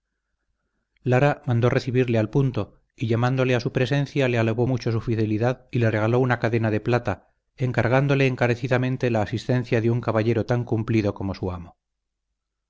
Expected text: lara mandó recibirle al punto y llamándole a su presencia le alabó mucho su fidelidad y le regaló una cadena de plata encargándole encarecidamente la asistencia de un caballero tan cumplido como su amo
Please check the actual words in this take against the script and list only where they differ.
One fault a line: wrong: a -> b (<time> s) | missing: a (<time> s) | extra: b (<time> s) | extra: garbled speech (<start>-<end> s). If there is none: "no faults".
no faults